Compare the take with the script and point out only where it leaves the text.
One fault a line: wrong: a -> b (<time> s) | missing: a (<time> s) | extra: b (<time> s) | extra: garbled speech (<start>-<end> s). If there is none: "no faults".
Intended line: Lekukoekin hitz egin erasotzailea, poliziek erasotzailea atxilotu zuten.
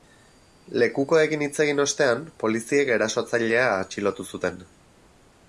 wrong: erasotzailea -> ostean (1.8 s)